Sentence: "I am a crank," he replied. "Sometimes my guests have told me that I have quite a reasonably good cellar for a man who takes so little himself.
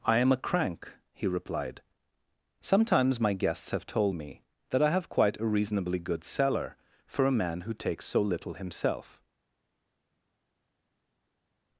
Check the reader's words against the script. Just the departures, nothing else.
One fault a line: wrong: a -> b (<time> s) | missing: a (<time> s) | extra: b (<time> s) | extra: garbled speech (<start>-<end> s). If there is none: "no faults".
no faults